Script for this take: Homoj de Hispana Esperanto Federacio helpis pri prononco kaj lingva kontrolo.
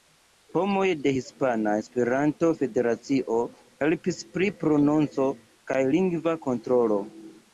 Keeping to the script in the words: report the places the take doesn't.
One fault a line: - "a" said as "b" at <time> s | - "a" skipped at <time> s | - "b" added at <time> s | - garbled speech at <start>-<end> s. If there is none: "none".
none